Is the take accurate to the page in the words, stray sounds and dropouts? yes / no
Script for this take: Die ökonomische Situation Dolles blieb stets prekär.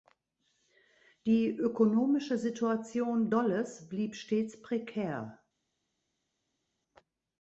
yes